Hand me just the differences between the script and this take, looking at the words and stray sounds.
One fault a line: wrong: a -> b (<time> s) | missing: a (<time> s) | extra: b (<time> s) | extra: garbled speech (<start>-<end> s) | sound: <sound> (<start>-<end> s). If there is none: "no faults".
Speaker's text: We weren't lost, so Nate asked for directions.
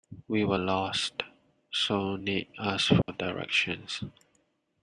wrong: weren't -> were (0.4 s)
sound: dropout (3.0-3.1 s)